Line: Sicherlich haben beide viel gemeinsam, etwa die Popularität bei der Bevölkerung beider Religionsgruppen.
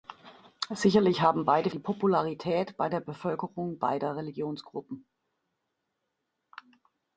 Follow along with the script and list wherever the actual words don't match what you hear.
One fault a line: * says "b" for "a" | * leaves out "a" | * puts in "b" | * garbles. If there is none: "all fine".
* leaves out "viel gemeinsam etwa"